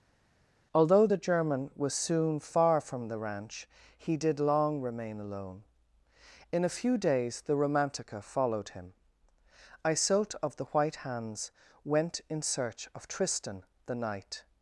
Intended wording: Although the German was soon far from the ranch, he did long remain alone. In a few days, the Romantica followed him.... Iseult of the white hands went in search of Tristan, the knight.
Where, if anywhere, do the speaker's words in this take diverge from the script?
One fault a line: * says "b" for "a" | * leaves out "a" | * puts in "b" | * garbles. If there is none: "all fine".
all fine